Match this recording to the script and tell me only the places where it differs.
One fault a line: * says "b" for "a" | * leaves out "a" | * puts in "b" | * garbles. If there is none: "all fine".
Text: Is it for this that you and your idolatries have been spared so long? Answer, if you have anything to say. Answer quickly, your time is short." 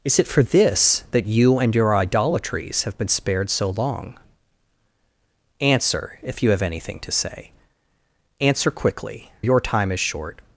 all fine